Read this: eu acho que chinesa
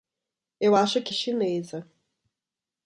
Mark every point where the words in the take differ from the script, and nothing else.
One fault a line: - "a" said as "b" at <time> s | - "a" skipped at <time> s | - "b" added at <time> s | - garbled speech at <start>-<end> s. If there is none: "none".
none